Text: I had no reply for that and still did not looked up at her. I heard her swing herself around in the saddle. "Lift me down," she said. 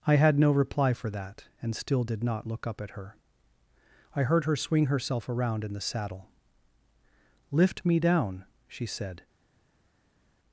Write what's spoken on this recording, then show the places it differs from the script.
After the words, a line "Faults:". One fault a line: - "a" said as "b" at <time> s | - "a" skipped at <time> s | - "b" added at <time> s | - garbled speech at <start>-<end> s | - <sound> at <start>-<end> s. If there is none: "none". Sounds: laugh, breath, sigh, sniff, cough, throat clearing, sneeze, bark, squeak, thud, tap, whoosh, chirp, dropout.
I had no reply for that and still did not look up at her. I heard her swing herself around in the saddle. "Lift me down," she said.
Faults:
- "looked" said as "look" at 2.5 s